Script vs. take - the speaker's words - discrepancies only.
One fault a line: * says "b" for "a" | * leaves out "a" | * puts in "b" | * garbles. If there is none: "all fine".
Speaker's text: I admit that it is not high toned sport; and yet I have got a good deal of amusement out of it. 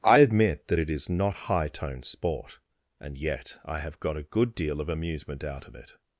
all fine